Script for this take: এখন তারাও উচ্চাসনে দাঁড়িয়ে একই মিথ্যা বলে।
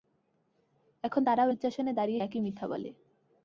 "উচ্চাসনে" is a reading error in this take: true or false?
false